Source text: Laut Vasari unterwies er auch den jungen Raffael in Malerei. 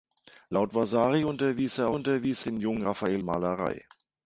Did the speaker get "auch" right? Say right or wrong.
wrong